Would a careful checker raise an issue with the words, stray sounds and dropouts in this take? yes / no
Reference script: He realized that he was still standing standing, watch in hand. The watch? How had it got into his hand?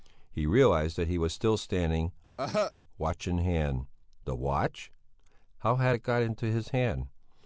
yes